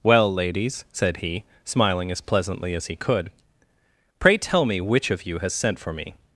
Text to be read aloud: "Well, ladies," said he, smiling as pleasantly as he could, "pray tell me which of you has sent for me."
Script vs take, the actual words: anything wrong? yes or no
no